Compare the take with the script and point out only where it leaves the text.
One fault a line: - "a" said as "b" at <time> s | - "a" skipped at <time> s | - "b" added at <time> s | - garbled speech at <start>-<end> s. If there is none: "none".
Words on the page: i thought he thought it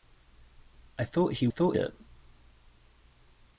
none